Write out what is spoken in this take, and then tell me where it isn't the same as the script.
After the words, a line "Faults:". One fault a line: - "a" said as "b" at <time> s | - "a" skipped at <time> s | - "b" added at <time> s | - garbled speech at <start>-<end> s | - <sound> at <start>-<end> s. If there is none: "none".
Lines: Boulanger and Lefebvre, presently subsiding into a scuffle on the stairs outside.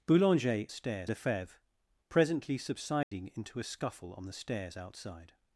Boulanger stairs Lefebvre, presently subsiding into a scuffle on the stairs outside.
Faults:
- "and" said as "stairs" at 0.7 s
- dropout at 3.0-3.1 s